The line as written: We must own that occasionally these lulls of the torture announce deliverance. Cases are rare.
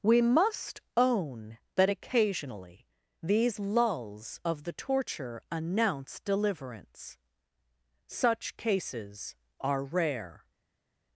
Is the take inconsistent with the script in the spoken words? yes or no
yes